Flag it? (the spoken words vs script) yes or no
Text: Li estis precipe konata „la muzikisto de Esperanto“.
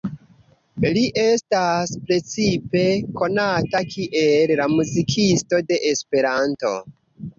yes